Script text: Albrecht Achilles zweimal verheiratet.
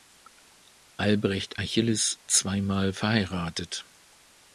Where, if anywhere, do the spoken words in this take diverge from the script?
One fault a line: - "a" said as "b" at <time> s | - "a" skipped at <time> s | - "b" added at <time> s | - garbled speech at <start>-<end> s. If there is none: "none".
none